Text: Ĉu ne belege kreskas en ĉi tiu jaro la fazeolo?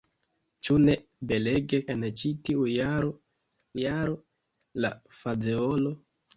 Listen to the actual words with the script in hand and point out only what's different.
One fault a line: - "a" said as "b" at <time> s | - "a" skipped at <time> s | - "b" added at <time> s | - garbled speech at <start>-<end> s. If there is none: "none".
- "kreskas" skipped at 1.8 s
- "jaro" added at 3.8 s